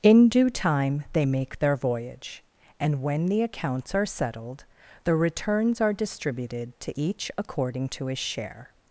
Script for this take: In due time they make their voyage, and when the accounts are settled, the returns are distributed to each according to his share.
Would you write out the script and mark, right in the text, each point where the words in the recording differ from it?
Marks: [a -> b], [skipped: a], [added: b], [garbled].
In due time they make their voyage, and when the accounts are settled, the returns are distributed to each according to his share.